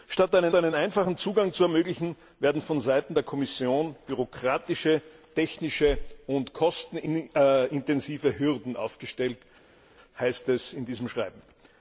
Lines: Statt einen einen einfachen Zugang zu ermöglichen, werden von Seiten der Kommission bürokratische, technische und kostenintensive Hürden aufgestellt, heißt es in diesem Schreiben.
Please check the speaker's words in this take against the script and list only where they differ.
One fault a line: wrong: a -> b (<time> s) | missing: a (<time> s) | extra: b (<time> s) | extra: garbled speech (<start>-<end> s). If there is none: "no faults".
no faults